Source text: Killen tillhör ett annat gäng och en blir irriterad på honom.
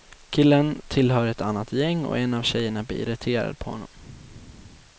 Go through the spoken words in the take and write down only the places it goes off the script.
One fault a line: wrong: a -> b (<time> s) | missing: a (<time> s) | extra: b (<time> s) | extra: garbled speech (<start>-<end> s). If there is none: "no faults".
extra: av tjejerna (2.3 s)